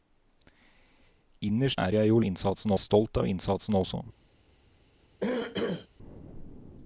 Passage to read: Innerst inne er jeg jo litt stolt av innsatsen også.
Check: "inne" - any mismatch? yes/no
yes